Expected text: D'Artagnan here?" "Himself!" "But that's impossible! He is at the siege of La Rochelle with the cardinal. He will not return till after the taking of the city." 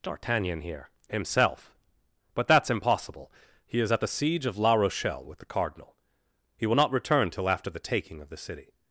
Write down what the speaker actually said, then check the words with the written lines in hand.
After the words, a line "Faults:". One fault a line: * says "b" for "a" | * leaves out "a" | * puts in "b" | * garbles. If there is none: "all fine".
D'Artagnan here?" "Himself!" "But that's impossible! He is at the siege of La Rochelle with the cardinal. He will not return till after the taking of the city."
Faults:
all fine